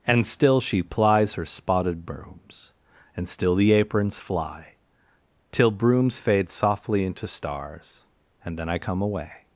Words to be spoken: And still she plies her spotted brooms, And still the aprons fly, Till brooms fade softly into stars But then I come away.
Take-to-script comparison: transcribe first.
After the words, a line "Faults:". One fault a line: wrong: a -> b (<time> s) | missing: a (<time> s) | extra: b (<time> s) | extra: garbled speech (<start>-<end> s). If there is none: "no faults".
And still she plies her spotted brooms, And still the aprons fly, Till brooms fade softly into stars And then I come away.
Faults:
wrong: But -> And (8.4 s)